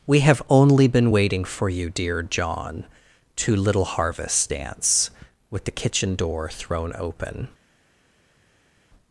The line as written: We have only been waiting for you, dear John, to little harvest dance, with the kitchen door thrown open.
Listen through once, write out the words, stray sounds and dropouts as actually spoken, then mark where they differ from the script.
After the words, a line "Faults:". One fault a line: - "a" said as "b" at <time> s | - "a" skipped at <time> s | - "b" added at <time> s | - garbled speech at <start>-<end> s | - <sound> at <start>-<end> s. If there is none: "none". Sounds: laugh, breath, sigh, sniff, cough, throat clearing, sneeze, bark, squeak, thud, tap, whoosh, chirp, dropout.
We have only been waiting for you, dear John, to little harvest dance, with the kitchen door thrown open.
Faults:
none